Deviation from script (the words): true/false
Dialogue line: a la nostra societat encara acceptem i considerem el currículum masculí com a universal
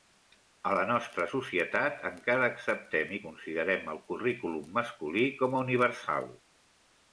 false